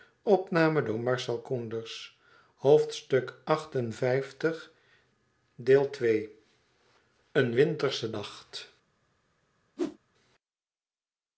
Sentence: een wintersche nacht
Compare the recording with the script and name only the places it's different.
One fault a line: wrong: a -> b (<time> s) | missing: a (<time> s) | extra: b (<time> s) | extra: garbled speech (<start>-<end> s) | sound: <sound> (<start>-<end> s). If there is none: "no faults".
sound: whoosh (9.8-10.0 s)